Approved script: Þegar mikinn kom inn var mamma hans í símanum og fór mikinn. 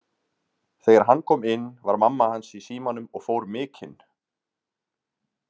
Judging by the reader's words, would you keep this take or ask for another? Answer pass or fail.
fail